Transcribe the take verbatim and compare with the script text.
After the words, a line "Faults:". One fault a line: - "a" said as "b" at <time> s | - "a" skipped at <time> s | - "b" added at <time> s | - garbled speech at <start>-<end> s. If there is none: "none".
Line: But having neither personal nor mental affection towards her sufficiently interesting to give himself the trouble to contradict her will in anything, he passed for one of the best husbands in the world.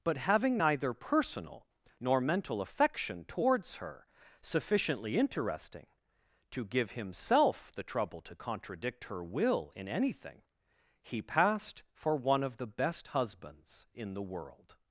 But having neither personal nor mental affection towards her sufficiently interesting to give himself the trouble to contradict her will in anything, he passed for one of the best husbands in the world.
Faults:
none